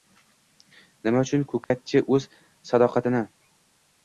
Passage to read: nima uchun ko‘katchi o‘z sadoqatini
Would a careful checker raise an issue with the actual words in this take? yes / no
no